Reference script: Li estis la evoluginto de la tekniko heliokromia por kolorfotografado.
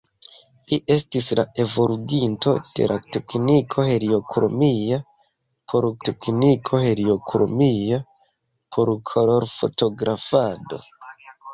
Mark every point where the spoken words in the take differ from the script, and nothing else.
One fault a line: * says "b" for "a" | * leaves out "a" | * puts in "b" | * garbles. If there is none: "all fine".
* puts in "tekniko heliokromia por"